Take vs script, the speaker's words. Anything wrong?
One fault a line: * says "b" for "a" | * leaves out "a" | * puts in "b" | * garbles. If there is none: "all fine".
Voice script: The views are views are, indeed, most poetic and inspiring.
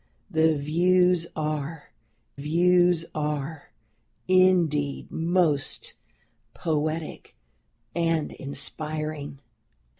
all fine